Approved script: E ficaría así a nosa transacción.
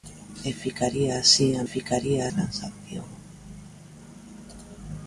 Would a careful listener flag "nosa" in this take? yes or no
yes